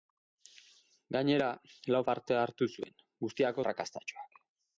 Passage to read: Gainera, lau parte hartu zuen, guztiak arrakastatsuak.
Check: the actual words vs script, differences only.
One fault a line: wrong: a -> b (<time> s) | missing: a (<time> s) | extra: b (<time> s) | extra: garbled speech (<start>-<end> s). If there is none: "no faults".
no faults